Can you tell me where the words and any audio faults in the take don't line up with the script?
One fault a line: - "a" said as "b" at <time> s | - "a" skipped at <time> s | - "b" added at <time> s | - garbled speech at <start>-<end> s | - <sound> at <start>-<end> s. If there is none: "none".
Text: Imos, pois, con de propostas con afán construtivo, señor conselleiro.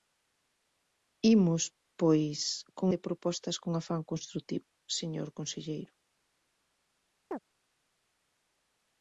- chirp at 7.3-7.4 s